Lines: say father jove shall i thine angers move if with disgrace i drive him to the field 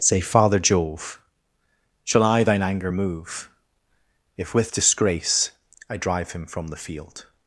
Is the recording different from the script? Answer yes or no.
yes